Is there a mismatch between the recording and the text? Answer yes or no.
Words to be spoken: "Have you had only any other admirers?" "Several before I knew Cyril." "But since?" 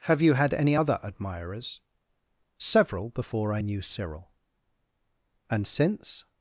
yes